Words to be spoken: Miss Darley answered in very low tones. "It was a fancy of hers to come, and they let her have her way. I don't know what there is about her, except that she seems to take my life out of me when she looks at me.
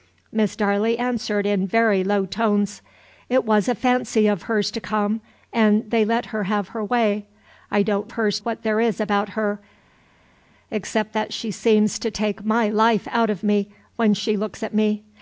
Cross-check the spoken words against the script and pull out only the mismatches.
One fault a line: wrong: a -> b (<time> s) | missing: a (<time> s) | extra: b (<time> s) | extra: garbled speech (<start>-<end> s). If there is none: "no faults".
wrong: know -> hers (8.1 s)